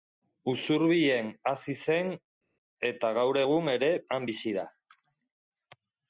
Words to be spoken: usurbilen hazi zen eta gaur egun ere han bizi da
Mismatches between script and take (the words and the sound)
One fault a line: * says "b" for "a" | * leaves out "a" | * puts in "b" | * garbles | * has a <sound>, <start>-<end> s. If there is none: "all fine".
all fine